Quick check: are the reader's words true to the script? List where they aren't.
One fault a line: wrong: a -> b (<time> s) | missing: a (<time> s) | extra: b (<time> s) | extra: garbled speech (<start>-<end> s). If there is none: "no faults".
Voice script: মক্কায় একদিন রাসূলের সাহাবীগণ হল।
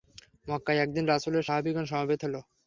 extra: সমবেত (1.9 s)